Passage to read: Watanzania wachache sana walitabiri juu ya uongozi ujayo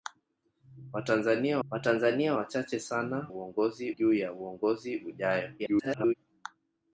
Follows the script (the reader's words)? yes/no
no